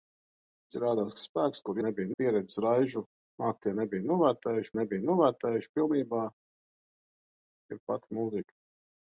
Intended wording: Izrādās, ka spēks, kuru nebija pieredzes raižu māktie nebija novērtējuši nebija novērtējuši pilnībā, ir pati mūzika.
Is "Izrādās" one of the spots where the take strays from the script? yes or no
no